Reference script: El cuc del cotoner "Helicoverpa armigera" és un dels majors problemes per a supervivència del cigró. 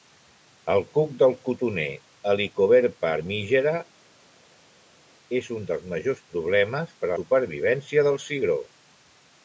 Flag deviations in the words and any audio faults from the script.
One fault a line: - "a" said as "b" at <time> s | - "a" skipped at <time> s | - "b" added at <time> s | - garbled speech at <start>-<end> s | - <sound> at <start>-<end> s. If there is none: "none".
none